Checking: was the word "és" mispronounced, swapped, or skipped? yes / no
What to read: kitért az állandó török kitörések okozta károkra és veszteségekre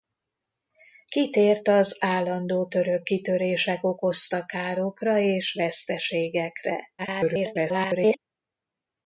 no